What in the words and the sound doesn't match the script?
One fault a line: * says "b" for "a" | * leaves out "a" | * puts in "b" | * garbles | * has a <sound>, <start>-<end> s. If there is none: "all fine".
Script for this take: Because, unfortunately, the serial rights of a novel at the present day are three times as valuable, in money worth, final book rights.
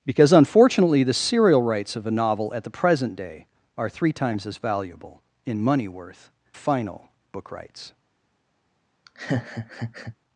* has a laugh, 9.1-10.2 s